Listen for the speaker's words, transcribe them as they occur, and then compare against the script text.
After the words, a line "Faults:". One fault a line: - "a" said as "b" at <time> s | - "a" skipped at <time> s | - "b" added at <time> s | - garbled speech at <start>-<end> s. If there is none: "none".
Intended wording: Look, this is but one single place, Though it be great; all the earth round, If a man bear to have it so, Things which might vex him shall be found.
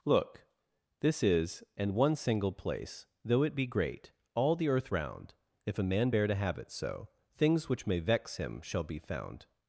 Look, this is and one single place, Though it be great; all the earth round, If a man bear to have it so, Things which may vex him shall be found.
Faults:
- "but" said as "and" at 1.8 s
- "might" said as "may" at 7.9 s